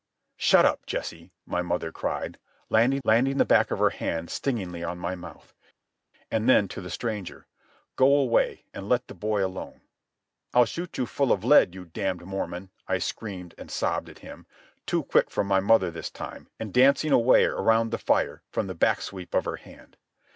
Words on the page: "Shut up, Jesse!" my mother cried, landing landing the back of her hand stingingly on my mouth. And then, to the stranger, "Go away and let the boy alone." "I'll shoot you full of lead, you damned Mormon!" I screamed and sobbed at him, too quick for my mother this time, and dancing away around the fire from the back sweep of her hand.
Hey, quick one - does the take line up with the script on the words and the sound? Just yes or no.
yes